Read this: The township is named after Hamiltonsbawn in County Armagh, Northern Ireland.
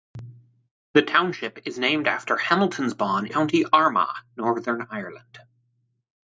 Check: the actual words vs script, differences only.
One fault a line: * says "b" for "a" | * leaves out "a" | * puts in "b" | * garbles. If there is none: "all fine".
* leaves out "in"